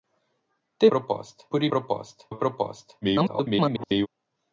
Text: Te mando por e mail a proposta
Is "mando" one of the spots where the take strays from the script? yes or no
yes